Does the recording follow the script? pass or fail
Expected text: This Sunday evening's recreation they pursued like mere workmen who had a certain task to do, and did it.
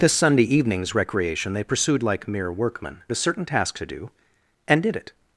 fail